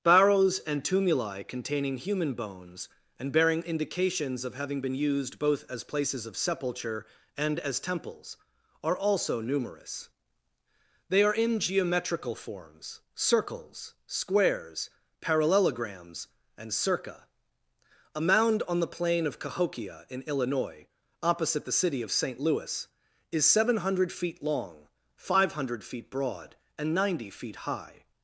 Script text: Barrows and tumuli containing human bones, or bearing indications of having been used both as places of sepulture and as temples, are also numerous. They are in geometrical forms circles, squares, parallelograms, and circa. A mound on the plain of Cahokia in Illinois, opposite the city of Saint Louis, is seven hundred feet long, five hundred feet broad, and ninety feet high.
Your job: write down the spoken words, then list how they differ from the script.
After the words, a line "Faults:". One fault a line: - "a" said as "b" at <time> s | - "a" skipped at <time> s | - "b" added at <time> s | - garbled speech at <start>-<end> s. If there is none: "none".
Barrows and tumuli containing human bones, and bearing indications of having been used both as places of sepulture and as temples, are also numerous. They are in geometrical forms circles, squares, parallelograms, and circa. A mound on the plain of Cahokia in Illinois, opposite the city of Saint Louis, is seven hundred feet long, five hundred feet broad, and ninety feet high.
Faults:
- "or" said as "and" at 3.2 s